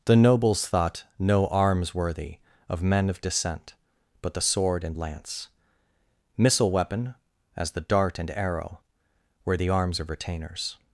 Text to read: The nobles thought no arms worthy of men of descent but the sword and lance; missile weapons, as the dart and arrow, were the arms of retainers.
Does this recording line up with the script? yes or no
no